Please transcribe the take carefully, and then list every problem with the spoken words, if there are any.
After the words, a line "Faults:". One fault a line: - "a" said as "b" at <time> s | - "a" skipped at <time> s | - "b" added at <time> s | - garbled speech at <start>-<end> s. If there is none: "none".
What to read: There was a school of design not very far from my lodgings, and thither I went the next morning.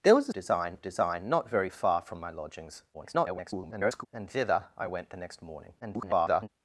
There was a design of design not very far from my lodgings, [garbled] and thither I went the next morning. [garbled]
Faults:
- "school" said as "design" at 0.3 s
- garbled speech at 2.9-4.1 s
- garbled speech at 5.8-6.5 s